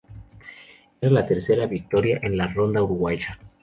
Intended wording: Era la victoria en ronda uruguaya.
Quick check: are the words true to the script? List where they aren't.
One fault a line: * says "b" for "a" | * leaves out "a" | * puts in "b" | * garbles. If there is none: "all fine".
* puts in "tercera"
* puts in "la"